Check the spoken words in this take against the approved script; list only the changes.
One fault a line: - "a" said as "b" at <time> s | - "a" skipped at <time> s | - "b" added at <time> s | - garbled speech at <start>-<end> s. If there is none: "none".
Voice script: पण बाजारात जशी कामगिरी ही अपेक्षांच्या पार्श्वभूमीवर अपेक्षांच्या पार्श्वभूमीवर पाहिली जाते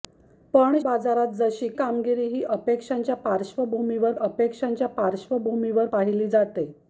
none